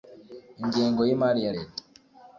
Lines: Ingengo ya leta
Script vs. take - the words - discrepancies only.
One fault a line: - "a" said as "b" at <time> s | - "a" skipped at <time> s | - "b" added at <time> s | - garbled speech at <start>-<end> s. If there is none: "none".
- "y'imari" added at 1.1 s